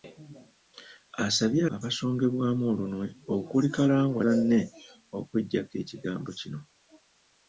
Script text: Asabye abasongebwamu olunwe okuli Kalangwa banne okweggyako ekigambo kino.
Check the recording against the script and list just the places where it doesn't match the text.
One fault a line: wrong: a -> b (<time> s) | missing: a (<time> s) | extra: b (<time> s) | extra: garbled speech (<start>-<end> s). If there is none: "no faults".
no faults